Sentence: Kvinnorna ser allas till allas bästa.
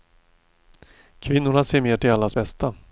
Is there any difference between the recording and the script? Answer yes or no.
yes